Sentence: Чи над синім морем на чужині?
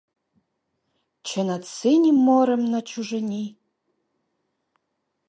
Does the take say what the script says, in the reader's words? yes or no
yes